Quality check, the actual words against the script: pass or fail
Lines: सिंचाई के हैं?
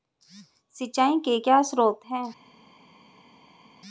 fail